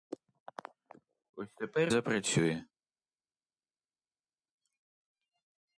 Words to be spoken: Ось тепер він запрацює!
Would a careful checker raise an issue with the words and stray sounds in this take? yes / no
yes